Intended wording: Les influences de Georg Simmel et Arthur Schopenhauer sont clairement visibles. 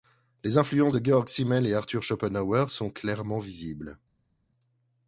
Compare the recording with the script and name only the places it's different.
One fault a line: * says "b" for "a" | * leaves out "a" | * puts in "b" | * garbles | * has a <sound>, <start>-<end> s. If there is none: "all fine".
all fine